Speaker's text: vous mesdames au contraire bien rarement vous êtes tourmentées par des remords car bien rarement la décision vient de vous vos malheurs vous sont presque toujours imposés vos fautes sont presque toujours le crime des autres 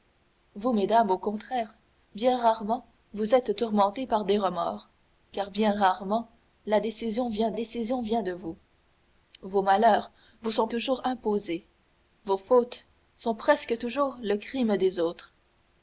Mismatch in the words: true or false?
true